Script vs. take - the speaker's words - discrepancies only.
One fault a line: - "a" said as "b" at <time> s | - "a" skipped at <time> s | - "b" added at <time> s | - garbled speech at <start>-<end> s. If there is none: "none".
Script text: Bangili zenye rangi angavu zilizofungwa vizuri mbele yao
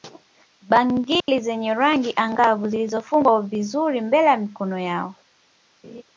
- "ya mikono" added at 4.3 s